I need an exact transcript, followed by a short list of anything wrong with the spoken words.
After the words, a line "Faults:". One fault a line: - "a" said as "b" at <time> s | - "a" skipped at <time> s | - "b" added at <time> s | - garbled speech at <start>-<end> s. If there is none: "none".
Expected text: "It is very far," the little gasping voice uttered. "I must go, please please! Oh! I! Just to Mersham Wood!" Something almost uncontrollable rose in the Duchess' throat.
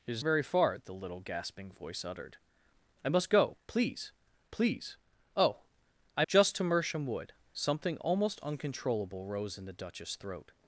"It is very far," the little gasping voice uttered. "I must go, please please! Oh! I! Just to Mersham Wood!" Something almost uncontrollable rose in the Duchess' throat.
Faults:
none